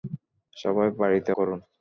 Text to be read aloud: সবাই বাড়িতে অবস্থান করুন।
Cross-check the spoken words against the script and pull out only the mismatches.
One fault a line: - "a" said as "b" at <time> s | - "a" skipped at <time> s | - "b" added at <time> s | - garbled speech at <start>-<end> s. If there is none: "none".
- "অবস্থান" skipped at 1.3 s